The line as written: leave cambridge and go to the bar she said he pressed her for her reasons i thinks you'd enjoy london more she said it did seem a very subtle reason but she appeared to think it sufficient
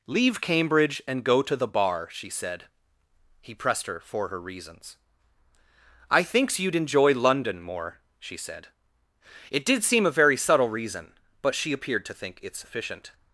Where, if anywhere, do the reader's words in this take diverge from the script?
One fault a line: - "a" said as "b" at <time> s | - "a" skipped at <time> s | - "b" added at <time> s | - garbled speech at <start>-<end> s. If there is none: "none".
none